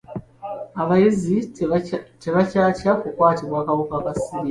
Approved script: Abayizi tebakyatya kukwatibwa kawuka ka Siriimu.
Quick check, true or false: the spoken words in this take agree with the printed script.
true